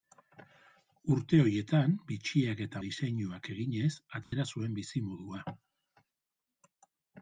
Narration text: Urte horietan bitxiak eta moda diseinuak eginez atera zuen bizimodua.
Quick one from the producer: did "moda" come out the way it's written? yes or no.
no